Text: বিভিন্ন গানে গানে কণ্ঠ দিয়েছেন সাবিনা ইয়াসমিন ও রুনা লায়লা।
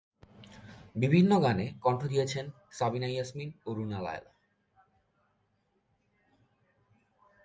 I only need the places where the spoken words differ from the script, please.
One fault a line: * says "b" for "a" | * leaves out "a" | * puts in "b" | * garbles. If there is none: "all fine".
* leaves out "গানে"